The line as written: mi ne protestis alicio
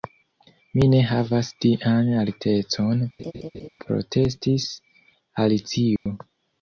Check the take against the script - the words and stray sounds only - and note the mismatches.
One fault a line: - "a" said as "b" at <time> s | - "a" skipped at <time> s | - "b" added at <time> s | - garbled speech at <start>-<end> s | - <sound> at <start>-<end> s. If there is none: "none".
- "havas tian altecon" added at 1.1 s
- laugh at 3.2-3.7 s
- dropout at 6.0-6.1 s